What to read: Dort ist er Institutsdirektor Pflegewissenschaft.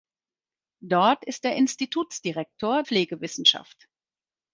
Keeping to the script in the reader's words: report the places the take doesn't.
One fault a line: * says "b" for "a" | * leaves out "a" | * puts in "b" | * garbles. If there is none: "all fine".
all fine